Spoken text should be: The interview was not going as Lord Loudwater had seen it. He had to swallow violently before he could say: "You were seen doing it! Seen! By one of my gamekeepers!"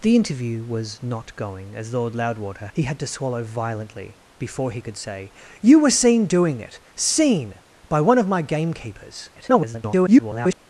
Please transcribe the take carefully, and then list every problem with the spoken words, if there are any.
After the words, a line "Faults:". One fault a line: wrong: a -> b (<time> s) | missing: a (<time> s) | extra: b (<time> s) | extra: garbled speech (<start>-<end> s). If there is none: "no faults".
The interview was not going as Lord Loudwater. He had to swallow violently before he could say: "You were seen doing it! Seen! By one of my gamekeepers!" [garbled]
Faults:
missing: had seen it (2.7 s)
extra: garbled speech (9.4-10.6 s)